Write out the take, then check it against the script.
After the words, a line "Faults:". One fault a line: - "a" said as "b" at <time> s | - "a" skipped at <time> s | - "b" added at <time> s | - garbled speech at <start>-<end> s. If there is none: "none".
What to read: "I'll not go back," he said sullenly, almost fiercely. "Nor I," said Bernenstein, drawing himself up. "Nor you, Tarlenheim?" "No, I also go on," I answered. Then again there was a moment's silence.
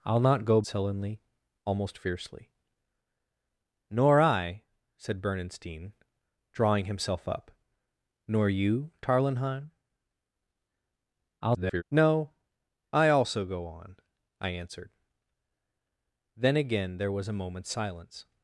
"I'll not go sullenly, almost fiercely. "Nor I," said Bernenstein, drawing himself up. "Nor you, Tarlenheim?" [garbled] "No, I also go on," I answered. Then again there was a moment's silence.
Faults:
- "back he said" skipped at 0.6 s
- garbled speech at 11.4-11.8 s